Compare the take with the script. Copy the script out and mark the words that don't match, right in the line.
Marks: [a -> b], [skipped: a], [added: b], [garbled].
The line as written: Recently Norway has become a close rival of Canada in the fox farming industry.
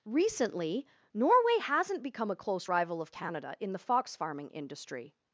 Recently Norway [has -> hasn't] become a close rival of Canada in the fox farming industry.